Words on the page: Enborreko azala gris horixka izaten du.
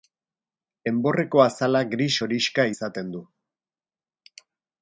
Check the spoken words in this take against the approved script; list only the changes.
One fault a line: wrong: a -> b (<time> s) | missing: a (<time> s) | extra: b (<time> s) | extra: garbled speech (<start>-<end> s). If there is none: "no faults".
no faults